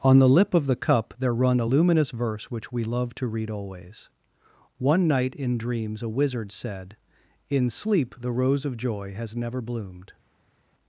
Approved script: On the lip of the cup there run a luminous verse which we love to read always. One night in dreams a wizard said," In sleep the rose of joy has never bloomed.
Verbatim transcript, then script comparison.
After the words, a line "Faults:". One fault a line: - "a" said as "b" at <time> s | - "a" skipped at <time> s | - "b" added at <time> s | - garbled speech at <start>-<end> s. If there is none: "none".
On the lip of the cup there run a luminous verse which we love to read always. One night in dreams a wizard said," In sleep the rose of joy has never bloomed.
Faults:
none